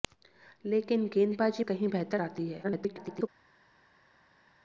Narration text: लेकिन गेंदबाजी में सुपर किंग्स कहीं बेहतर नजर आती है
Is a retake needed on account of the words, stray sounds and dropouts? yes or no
yes